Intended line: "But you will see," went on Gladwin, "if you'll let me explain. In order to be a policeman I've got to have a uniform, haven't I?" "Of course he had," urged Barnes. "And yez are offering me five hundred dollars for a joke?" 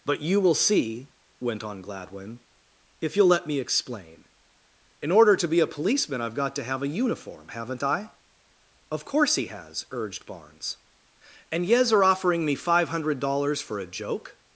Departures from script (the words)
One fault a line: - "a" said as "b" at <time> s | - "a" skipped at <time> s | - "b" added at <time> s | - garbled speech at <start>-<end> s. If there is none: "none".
- "had" said as "has" at 9.5 s